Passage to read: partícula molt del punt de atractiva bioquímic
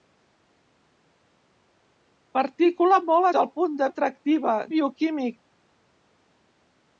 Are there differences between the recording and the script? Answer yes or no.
no